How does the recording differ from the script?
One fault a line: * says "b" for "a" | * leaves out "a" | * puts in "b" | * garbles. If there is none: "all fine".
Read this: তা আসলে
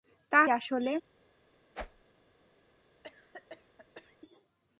all fine